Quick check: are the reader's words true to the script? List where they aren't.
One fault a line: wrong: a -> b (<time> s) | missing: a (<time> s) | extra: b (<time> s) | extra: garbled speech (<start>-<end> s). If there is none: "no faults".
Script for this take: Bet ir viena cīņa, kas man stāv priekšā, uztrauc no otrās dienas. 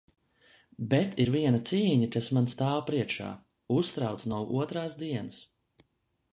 no faults